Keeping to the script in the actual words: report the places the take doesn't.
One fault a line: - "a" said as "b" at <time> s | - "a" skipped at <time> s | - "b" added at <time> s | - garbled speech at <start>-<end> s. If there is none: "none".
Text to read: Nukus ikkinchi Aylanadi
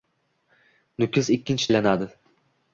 none